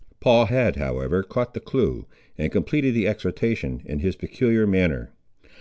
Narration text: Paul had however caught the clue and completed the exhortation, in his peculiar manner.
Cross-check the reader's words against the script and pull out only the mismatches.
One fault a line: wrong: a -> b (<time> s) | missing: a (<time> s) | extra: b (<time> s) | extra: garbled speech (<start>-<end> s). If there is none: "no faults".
no faults